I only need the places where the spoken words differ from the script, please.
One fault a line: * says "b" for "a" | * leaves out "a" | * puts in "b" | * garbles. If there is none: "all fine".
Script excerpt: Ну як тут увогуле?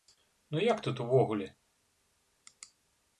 all fine